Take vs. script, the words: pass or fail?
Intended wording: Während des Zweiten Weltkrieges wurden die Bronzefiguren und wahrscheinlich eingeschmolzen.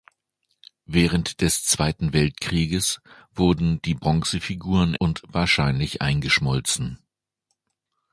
pass